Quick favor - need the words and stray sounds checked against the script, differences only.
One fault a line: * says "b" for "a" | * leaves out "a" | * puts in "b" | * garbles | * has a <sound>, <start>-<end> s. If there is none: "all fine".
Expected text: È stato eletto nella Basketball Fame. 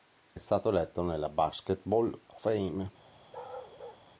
* has a bark, 3.3-4.0 s